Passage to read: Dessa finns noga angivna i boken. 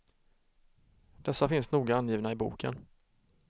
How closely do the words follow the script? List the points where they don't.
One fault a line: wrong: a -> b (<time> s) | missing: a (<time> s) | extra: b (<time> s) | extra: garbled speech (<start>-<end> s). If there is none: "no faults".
no faults